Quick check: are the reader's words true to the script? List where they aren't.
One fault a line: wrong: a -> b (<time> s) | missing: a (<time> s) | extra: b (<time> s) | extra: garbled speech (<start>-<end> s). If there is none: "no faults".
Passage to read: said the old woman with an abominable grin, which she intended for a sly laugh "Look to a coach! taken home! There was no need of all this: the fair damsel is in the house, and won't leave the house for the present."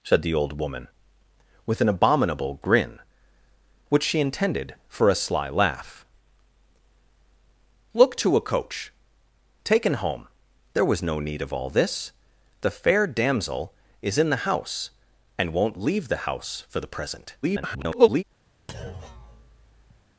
extra: garbled speech (17.4-18.2 s)